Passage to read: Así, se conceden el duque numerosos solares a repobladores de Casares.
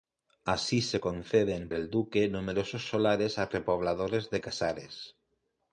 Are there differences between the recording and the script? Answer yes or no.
no